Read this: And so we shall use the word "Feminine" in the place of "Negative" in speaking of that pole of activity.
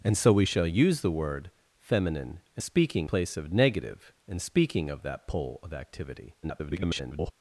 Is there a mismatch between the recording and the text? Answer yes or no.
yes